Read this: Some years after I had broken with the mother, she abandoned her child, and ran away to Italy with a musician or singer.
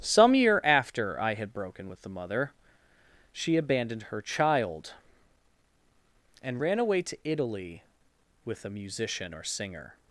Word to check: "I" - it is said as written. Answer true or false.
true